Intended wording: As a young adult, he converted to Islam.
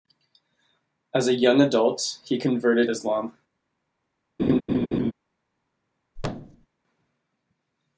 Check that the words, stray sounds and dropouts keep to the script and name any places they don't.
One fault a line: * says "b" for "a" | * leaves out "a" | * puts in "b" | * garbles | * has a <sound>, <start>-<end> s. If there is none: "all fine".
* leaves out "to"
* has a laugh, 4.4-5.1 s
* has a thud, 6.2-6.7 s